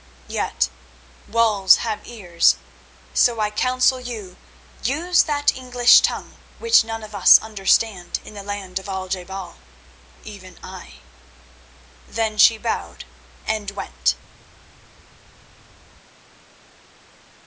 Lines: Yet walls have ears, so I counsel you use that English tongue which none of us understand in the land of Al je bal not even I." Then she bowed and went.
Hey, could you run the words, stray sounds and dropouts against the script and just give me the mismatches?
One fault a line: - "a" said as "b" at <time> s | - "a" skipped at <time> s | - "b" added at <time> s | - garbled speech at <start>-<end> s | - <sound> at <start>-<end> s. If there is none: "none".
- "not" skipped at 9.6 s